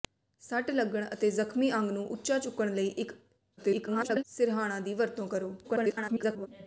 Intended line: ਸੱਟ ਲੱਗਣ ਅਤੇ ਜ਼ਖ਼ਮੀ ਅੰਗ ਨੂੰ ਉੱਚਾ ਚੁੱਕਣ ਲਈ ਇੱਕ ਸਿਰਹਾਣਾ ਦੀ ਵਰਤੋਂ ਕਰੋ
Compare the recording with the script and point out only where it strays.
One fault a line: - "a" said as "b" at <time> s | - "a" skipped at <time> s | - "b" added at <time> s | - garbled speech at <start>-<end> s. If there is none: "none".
- garbled speech at 3.6-4.2 s
- garbled speech at 5.6-6.5 s